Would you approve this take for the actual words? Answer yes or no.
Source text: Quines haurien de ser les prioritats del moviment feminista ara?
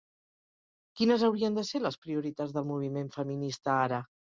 yes